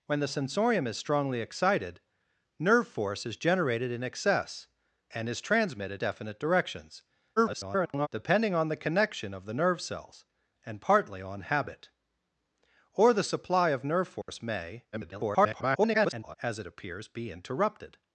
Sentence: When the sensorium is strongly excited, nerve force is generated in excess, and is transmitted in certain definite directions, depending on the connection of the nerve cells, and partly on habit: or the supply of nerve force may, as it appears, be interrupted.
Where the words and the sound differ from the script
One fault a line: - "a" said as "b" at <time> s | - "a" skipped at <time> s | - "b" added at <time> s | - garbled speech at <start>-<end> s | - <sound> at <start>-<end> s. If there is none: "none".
- "in certain" skipped at 6.0 s
- garbled speech at 7.4-8.1 s
- dropout at 14.2-14.3 s
- garbled speech at 14.9-16.3 s